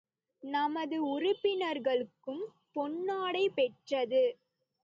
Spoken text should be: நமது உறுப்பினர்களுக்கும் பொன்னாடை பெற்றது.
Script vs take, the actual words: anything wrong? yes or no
no